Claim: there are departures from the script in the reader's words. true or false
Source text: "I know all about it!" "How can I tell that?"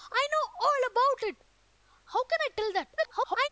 true